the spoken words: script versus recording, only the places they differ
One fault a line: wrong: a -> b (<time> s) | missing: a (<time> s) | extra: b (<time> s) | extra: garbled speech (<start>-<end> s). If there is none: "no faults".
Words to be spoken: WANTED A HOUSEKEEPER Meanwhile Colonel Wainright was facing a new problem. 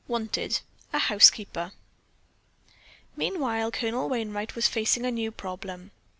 no faults